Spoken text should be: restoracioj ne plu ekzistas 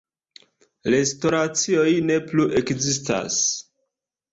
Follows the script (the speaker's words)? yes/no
yes